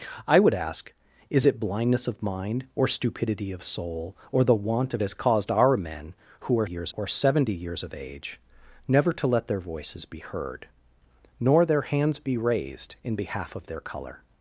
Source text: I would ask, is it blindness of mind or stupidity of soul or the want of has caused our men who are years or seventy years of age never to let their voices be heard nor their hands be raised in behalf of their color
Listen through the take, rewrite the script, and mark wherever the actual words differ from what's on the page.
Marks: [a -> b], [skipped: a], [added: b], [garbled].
I would ask, is it blindness of mind or stupidity of soul or the want of has caused our men who are years or seventy years of age never to let their voices be heard nor their hands be raised in behalf of their color